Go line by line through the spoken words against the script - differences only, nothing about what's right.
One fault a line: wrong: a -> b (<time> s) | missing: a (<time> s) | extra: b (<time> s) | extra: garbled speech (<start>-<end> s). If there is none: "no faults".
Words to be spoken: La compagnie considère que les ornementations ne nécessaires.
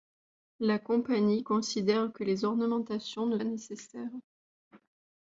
no faults